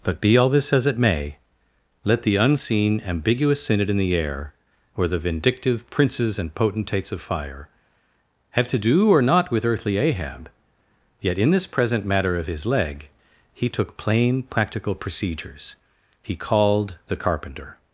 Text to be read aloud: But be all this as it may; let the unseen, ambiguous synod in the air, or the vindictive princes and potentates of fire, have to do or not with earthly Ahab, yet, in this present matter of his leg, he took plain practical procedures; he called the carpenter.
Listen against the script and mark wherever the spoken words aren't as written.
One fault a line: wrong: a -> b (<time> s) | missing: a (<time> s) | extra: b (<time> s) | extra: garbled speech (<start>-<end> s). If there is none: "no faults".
no faults